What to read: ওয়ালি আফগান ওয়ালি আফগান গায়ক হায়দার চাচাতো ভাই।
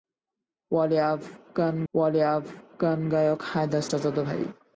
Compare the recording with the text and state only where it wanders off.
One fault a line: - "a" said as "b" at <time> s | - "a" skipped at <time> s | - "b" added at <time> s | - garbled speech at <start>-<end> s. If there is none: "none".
none